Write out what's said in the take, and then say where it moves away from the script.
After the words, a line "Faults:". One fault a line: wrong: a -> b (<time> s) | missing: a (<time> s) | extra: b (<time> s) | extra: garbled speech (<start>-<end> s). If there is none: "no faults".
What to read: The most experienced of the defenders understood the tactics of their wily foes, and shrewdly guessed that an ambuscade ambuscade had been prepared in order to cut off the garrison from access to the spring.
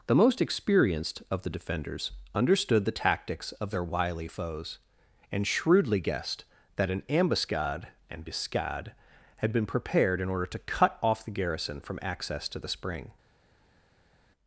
The most experienced of the defenders understood the tactics of their wily foes, and shrewdly guessed that an ambuscade ambuscade had been prepared in order to cut off the garrison from access to the spring.
Faults:
no faults